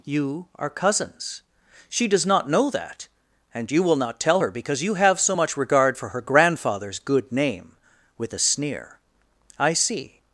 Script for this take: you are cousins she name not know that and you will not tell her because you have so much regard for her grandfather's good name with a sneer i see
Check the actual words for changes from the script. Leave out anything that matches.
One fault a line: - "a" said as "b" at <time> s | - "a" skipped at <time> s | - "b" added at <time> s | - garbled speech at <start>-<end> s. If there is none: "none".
- "name" said as "does" at 2.1 s